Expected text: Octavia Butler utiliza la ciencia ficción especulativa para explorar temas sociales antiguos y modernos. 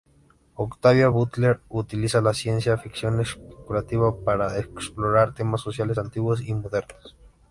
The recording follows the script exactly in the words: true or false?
true